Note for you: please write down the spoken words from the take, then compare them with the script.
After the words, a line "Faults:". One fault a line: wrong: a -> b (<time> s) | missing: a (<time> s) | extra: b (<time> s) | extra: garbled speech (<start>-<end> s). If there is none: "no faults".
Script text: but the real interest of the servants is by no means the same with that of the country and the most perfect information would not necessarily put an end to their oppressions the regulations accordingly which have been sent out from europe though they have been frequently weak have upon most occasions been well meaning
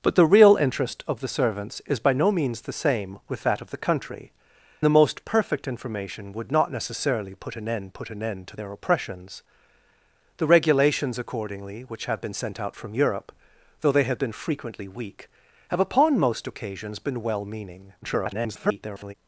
but the real interest of the servants is by no means the same with that of the country the most perfect information would not necessarily put an end put an end to their oppressions the regulations accordingly which have been sent out from europe though they have been frequently weak have upon most occasions been well meaning [garbled]
Faults:
missing: and (4.3 s)
extra: put an end (7.9 s)
extra: garbled speech (18.0-19.1 s)